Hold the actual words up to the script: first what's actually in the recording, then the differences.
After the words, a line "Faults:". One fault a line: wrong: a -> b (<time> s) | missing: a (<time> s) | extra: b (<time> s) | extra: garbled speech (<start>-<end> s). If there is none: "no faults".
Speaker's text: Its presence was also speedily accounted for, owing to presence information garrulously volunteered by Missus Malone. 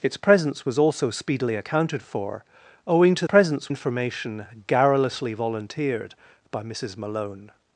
Its presence was also speedily accounted for, owing to presence information garrulously volunteered by Missus Malone.
Faults:
no faults